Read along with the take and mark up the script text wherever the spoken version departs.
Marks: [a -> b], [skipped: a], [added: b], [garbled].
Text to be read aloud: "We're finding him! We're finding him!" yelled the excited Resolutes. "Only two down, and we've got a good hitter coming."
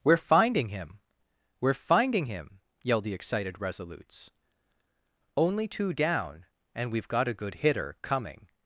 "We're finding him! We're finding him!" yelled the excited Resolutes. "Only two down, and we've got a good hitter coming."